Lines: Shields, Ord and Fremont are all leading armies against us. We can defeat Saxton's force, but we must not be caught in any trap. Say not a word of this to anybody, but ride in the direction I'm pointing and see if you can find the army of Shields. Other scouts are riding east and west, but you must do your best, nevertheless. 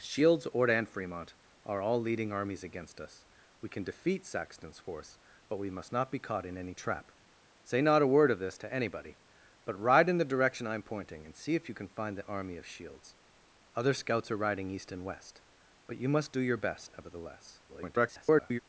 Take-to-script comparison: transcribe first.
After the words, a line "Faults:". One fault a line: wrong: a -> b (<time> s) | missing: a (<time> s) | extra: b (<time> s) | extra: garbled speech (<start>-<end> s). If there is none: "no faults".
Shields, Ord and Fremont are all leading armies against us. We can defeat Saxton's force, but we must not be caught in any trap. Say not a word of this to anybody, but ride in the direction I'm pointing and see if you can find the army of Shields. Other scouts are riding east and west, but you must do your best, nevertheless. [garbled]
Faults:
extra: garbled speech (17.7-18.6 s)